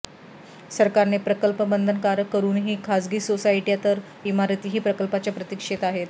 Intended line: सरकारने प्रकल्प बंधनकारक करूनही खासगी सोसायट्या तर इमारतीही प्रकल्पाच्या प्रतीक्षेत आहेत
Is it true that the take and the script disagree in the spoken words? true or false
false